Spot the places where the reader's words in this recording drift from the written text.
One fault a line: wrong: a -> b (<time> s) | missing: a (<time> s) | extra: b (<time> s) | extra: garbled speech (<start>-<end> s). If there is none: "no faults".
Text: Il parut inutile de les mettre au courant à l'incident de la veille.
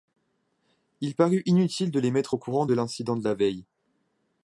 wrong: à -> de (2.6 s)